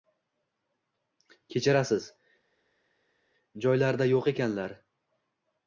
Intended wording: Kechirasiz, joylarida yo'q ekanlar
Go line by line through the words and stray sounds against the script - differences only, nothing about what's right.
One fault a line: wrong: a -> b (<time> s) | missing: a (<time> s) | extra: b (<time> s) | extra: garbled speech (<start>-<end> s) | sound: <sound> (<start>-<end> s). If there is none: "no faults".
no faults